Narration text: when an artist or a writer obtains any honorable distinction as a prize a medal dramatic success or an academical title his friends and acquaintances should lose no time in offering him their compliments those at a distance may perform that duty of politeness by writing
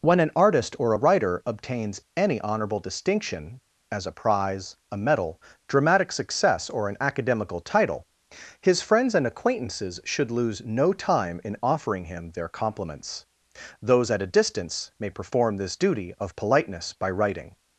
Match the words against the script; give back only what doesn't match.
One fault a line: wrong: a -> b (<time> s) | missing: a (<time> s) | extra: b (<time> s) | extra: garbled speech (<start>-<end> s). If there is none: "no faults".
wrong: that -> this (15.6 s)